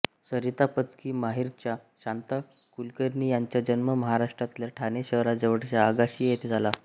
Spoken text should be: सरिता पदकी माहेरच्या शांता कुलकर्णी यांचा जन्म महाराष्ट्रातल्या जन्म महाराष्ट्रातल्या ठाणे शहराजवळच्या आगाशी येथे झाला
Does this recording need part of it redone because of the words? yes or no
yes